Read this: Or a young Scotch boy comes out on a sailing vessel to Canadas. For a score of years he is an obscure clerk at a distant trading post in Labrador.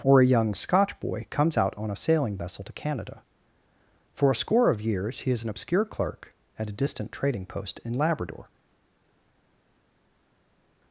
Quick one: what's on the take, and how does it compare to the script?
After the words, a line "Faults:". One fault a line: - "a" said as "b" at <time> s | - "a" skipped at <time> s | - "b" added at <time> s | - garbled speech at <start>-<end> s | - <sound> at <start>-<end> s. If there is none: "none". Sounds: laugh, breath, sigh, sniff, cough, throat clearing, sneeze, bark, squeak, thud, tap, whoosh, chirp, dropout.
Or a young Scotch boy comes out on a sailing vessel to Canada. For a score of years he is an obscure clerk at a distant trading post in Labrador.
Faults:
- "Canadas" said as "Canada" at 2.7 s